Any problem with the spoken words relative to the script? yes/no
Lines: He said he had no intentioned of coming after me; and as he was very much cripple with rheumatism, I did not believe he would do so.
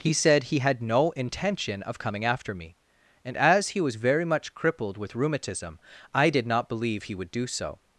yes